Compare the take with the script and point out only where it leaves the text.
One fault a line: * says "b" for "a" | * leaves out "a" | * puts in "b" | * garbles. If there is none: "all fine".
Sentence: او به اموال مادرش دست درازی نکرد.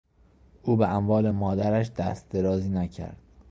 all fine